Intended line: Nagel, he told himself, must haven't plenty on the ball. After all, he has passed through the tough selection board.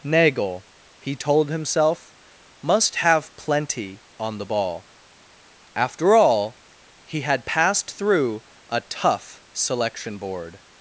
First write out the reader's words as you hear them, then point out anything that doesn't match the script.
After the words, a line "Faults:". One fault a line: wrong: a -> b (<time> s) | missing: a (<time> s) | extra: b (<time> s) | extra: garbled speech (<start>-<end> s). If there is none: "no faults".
Nagel, he told himself, must have plenty on the ball. After all, he had passed through a tough selection board.
Faults:
wrong: haven't -> have (3.0 s)
wrong: has -> had (7.2 s)
wrong: the -> a (8.7 s)